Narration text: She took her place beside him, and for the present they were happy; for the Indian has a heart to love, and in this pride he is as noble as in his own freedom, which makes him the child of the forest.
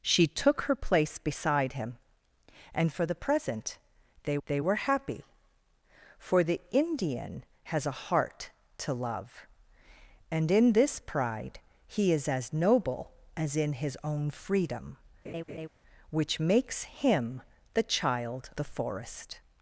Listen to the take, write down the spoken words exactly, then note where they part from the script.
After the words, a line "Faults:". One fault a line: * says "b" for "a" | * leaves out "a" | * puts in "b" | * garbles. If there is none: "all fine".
She took her place beside him, and for the present they they were happy; for the Indian has a heart to love, and in this pride he is as noble as in his own freedom, which makes him the child the forest.
Faults:
* puts in "they"
* leaves out "of"